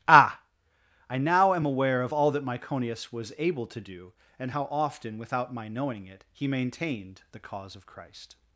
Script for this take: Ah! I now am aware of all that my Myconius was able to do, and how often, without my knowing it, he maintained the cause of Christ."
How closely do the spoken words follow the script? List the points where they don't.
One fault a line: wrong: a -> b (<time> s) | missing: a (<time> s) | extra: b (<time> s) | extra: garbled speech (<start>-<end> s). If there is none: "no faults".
missing: my (2.4 s)